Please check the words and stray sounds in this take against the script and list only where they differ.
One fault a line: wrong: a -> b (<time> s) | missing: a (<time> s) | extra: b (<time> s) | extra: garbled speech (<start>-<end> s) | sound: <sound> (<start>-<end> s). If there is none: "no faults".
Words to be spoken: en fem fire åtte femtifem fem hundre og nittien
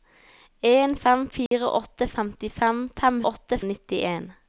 sound: dropout (1.5-1.5 s)
wrong: hundre -> åtte (3.3 s)